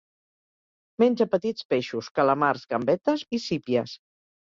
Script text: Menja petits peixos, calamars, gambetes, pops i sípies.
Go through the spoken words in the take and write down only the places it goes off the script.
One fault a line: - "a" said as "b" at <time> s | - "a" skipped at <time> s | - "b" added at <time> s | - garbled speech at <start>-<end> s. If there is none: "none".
- "pops" skipped at 3.3 s